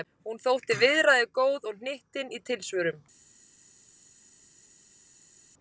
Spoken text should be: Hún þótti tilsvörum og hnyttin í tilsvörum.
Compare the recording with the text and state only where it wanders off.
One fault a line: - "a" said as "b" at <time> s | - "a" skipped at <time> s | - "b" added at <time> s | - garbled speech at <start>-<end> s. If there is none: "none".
- "tilsvörum" said as "viðræðugóð" at 0.8 s